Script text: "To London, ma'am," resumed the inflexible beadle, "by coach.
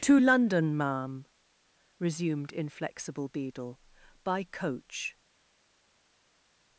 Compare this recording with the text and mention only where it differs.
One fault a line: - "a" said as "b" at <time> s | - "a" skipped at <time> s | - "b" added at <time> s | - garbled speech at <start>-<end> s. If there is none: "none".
- "the" skipped at 2.5 s